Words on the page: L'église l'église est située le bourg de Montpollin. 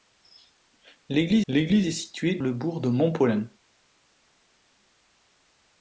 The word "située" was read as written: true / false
true